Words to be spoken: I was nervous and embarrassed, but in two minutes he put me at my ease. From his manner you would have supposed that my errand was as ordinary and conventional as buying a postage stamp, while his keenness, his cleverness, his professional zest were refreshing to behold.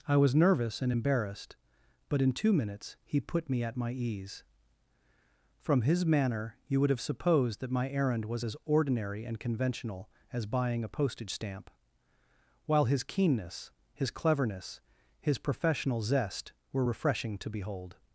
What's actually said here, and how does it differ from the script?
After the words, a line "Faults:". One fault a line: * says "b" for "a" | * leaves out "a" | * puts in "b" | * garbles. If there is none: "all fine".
I was nervous and embarrassed, but in two minutes he put me at my ease. From his manner you would have supposed that my errand was as ordinary and conventional as buying a postage stamp, while his keenness, his cleverness, his professional zest were refreshing to behold.
Faults:
all fine